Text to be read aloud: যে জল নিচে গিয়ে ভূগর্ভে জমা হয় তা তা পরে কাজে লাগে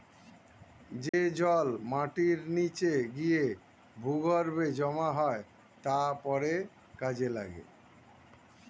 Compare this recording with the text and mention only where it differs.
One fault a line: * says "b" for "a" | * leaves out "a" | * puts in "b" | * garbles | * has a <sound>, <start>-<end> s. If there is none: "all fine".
* has a dropout, 1.1-1.1 s
* puts in "মাটির"
* leaves out "তা"